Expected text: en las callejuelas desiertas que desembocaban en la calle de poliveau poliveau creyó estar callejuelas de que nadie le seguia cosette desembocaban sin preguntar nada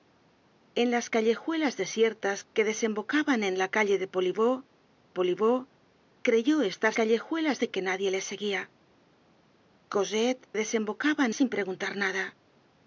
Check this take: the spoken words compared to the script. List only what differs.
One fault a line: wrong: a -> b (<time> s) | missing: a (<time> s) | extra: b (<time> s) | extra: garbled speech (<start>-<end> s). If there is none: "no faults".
no faults